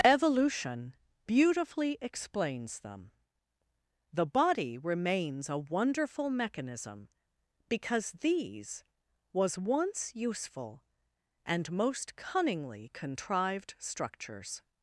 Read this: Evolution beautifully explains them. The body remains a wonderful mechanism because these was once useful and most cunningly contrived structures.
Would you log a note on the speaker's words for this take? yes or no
no